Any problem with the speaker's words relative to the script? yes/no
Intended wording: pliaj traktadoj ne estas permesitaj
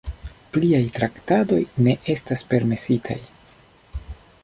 no